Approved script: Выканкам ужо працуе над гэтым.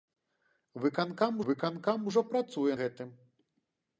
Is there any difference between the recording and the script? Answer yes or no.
yes